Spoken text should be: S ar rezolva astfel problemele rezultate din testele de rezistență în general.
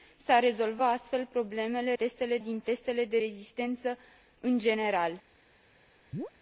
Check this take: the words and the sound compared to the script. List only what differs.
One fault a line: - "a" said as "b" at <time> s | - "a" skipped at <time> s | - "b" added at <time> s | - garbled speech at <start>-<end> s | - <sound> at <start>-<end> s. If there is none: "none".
- "rezultate" said as "testele" at 1.9 s
- chirp at 6.1-6.3 s